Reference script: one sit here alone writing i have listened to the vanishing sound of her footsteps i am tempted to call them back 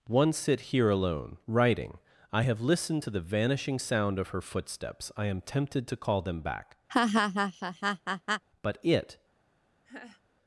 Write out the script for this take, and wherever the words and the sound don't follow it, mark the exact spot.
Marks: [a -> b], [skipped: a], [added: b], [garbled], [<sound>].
one sit here alone writing i have listened to the vanishing sound of her footsteps i am tempted to call them back [laugh] [added: but it] [laugh]